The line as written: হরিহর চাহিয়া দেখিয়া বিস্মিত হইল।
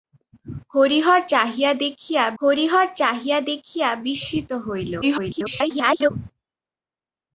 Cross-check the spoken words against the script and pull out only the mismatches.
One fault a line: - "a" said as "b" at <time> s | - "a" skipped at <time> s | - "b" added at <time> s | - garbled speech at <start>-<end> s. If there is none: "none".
- "হরিহর চাহিয়া দেখিয়া" added at 2.4 s
- garbled speech at 5.0-6.1 s